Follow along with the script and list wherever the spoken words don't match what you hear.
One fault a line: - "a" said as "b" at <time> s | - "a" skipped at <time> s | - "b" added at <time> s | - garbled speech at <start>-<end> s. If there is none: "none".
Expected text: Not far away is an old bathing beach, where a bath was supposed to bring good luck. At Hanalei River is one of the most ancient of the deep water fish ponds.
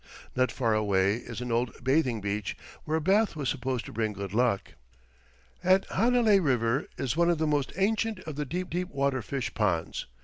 - "deep" added at 8.7 s